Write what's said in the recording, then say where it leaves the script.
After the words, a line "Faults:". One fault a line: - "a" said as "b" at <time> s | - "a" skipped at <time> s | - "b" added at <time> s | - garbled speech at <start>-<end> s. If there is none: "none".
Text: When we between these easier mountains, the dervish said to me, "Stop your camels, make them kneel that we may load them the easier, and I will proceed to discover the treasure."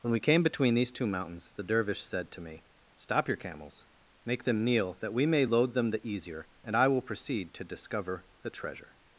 When we came between these two mountains, the dervish said to me, "Stop your camels, make them kneel that we may load them the easier, and I will proceed to discover the treasure."
Faults:
- "came" added at 0.2 s
- "easier" said as "two" at 0.9 s